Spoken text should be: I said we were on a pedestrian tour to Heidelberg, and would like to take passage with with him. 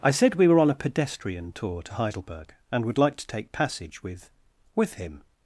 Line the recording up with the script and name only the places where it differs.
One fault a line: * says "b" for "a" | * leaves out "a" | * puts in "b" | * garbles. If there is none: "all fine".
all fine